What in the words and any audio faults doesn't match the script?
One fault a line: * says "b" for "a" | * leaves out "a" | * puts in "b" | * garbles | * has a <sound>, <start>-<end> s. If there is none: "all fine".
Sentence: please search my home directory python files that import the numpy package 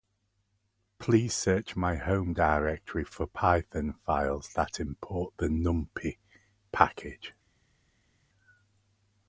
* puts in "for"